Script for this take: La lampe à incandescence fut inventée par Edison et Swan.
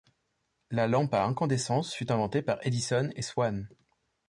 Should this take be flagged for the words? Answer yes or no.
no